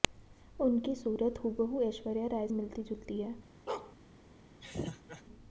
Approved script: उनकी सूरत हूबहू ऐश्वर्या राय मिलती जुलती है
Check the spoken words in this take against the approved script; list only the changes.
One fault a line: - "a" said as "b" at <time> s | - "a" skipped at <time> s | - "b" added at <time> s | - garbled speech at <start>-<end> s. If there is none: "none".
none